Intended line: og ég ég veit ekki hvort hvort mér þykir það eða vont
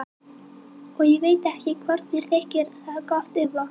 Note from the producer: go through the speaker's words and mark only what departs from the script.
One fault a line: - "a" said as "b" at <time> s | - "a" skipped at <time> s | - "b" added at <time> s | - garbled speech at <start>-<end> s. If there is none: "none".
- "ég" skipped at 1.2 s
- "hvort" skipped at 2.1 s
- "gott" added at 3.1 s